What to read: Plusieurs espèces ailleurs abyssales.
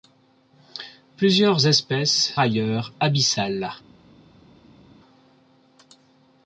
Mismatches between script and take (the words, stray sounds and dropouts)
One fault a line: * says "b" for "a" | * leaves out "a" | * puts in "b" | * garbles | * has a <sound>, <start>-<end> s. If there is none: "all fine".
all fine